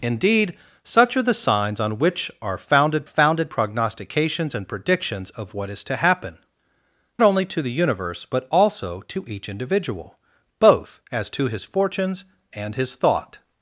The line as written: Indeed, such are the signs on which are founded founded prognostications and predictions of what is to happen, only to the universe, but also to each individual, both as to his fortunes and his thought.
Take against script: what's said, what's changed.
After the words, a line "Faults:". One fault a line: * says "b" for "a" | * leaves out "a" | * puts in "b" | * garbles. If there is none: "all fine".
Indeed, such are the signs on which are founded founded prognostications and predictions of what is to happen, only to the universe, but also to each individual, both as to his fortunes and his thought.
Faults:
all fine